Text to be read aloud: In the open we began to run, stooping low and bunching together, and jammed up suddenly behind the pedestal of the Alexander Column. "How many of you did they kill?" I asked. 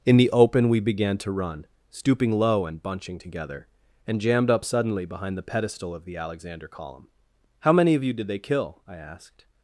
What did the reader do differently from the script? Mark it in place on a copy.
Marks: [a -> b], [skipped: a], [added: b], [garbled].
In the open we began to run, stooping low and bunching together, and jammed up suddenly behind the pedestal of the Alexander Column. "How many of you did they kill?" I asked.